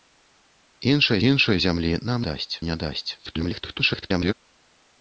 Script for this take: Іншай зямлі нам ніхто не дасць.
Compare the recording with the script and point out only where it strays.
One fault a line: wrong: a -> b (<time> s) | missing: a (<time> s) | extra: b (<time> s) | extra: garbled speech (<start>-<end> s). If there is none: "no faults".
extra: іншай (1.3 s)
wrong: ніхто -> дасць (2.3 s)
extra: garbled speech (3.2-4.3 s)